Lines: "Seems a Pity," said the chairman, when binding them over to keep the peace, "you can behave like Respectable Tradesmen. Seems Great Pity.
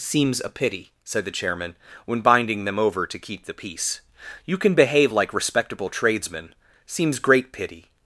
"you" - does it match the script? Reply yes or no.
yes